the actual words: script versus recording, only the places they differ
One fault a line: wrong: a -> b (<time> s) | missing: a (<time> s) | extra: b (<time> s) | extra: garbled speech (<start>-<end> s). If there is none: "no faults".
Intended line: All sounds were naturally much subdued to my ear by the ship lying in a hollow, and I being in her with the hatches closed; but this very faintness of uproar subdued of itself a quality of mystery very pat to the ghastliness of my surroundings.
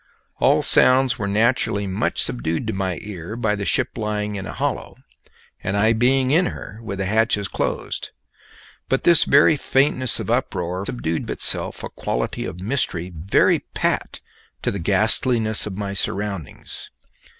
no faults